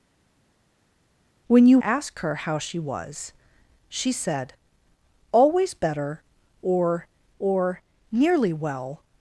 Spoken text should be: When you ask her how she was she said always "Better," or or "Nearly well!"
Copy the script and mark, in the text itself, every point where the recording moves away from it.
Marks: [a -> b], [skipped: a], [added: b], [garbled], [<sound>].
When you ask her how she was she said always "Better," or or "Nearly well!"